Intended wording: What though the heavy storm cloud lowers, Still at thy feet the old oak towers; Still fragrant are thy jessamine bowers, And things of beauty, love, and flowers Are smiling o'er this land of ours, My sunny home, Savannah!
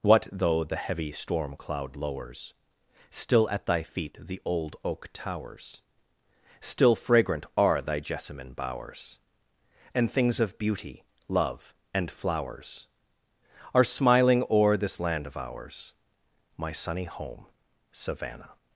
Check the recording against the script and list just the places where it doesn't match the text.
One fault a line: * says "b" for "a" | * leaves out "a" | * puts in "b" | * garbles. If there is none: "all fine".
all fine